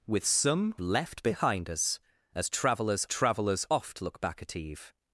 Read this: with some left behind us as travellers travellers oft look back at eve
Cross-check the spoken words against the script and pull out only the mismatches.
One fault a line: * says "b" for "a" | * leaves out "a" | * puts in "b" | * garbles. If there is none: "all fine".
all fine